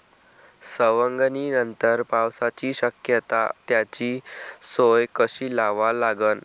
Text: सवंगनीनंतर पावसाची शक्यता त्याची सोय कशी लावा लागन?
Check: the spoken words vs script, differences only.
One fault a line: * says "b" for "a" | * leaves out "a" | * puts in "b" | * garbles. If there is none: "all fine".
all fine